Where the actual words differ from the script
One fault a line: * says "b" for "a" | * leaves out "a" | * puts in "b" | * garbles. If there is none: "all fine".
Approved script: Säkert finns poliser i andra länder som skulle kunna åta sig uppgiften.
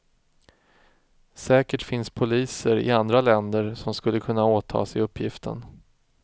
all fine